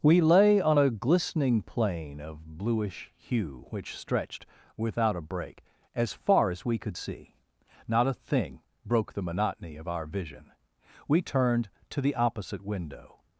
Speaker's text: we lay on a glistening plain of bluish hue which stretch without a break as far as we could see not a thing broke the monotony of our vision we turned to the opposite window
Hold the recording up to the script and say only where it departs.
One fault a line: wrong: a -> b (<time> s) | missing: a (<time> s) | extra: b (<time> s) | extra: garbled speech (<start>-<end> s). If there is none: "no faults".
wrong: stretch -> stretched (4.0 s)